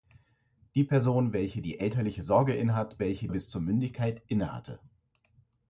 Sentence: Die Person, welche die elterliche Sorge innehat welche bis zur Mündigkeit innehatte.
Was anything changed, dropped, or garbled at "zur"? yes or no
no